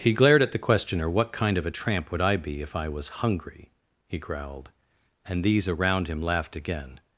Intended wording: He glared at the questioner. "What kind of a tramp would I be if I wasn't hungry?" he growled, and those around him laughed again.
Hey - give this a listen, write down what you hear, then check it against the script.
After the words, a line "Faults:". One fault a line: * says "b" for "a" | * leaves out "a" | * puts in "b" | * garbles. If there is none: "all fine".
He glared at the questioner. "What kind of a tramp would I be if I was hungry?" he growled, and these around him laughed again.
Faults:
* says "was" for "wasn't"
* says "these" for "those"